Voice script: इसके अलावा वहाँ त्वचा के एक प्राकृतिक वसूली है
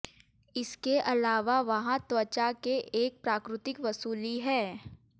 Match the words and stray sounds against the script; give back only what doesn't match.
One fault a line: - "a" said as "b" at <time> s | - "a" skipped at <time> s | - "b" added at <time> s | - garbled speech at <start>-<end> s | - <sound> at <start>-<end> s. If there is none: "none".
none